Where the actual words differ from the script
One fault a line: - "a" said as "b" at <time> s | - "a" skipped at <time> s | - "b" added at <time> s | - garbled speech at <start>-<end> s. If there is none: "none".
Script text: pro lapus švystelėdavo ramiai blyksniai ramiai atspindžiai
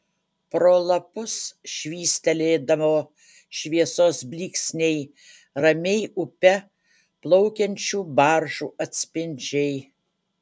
- "ramiai" said as "šviesos" at 3.6 s
- "upe plaukiančių baržų" added at 6.2 s